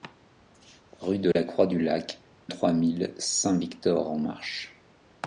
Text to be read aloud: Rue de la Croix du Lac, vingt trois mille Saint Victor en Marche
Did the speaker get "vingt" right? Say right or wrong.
wrong